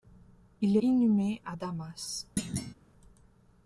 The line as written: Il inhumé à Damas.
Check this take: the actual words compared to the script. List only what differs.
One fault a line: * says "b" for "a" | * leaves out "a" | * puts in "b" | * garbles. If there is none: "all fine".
all fine